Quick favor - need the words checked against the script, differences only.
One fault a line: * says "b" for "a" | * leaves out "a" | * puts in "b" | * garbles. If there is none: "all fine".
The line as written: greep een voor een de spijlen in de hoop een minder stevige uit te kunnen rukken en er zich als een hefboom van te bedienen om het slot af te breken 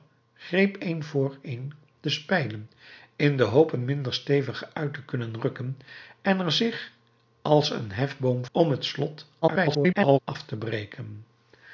* leaves out "van te bedienen"
* garbles